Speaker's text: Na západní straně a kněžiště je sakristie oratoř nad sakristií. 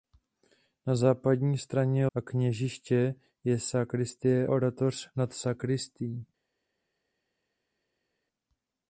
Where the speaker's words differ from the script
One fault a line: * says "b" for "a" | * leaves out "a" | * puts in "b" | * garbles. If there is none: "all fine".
all fine